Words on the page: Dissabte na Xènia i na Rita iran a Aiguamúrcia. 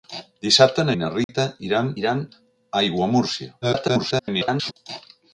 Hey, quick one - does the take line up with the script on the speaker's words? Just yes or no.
no